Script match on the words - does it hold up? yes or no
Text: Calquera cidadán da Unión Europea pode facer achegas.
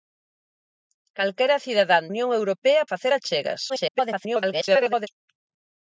no